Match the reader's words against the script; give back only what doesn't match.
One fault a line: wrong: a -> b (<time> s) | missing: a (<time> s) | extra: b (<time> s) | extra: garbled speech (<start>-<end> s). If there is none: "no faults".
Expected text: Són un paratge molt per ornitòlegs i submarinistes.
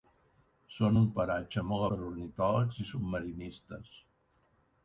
no faults